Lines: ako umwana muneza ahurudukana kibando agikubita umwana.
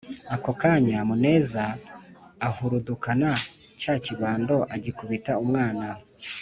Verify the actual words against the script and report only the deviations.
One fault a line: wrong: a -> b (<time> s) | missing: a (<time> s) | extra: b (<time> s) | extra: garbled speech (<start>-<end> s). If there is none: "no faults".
wrong: umwana -> kanya (0.6 s)
extra: cya (3.8 s)